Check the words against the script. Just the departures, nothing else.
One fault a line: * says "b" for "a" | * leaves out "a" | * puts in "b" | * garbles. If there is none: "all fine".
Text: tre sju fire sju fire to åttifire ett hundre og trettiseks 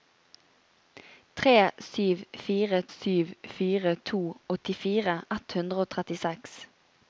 all fine